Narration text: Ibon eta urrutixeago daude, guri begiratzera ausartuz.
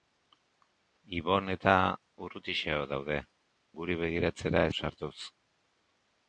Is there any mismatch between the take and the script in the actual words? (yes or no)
no